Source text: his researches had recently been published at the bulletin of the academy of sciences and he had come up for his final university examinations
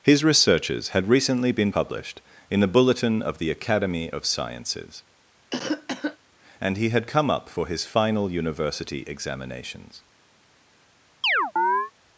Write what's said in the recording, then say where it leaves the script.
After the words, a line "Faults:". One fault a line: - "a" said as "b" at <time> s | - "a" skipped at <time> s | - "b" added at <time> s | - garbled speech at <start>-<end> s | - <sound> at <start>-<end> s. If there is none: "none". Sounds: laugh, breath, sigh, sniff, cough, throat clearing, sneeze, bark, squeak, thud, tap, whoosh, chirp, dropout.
his researches had recently been published in the bulletin of the academy of sciences and he had come up for his final university examinations
Faults:
- "at" said as "in" at 2.5 s
- cough at 5.5-6.2 s
- chirp at 11.2-11.9 s